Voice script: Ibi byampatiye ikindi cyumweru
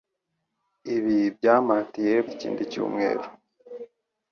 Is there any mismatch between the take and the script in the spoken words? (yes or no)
no